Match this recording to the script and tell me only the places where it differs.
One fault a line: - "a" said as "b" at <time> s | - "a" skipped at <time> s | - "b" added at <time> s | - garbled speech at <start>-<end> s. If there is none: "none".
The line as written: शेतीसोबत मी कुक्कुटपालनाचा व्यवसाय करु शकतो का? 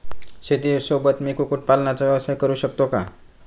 none